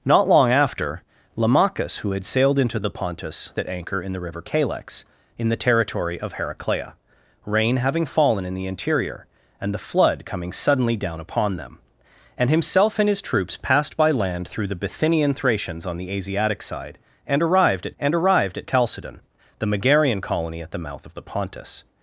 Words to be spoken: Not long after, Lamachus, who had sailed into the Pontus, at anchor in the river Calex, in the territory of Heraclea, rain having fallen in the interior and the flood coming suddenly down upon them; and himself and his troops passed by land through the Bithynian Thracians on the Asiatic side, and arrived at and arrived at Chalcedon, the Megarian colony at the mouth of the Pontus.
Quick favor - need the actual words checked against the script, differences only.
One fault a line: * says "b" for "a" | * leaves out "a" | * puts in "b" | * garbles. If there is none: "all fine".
all fine